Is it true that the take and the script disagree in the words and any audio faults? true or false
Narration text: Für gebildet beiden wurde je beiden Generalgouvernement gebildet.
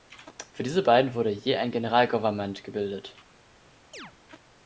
true